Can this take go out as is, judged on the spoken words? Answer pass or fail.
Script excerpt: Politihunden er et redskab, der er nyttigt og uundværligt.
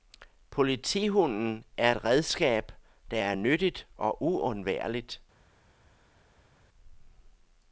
pass